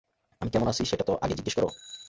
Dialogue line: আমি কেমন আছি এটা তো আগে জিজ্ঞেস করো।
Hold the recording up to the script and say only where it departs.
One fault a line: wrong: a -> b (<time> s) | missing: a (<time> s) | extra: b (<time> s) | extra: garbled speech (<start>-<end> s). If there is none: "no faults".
wrong: এটা -> সেটা (0.8 s)